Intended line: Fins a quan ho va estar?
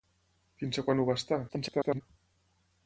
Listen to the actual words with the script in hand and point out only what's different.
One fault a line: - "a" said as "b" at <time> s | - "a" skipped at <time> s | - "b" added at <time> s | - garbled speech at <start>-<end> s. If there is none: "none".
- garbled speech at 1.5-2.0 s